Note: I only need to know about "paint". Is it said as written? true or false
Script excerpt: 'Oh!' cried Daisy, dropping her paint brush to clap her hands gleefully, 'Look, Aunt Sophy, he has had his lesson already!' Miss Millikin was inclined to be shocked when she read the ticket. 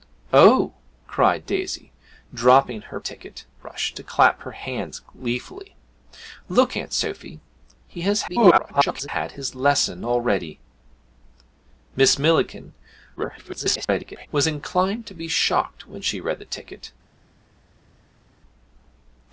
false